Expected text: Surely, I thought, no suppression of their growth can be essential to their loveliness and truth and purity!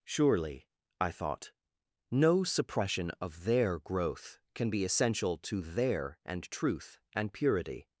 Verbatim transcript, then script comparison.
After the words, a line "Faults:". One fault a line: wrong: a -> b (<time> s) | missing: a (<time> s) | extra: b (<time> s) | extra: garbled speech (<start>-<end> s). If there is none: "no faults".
Surely, I thought, no suppression of their growth can be essential to their and truth and purity!
Faults:
missing: loveliness (6.2 s)